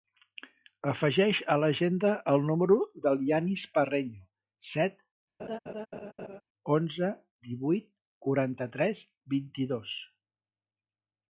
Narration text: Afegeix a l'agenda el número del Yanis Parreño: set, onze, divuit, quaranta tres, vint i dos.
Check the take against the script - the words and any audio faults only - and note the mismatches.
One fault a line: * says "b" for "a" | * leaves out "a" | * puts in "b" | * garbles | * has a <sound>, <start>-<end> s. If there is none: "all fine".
* has a laugh, 5.4-6.4 s